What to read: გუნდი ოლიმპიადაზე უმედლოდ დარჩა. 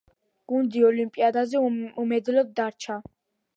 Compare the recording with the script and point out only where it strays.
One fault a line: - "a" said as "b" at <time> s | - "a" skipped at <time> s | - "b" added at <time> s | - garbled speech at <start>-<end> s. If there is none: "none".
none